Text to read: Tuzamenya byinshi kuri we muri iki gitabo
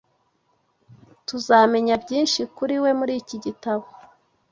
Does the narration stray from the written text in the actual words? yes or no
no